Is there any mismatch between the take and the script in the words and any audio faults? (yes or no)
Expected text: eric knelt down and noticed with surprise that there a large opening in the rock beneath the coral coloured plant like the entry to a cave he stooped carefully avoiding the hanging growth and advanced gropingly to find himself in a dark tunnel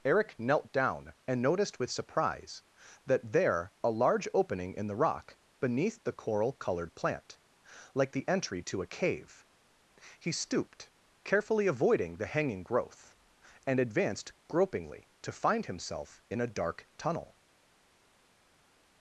no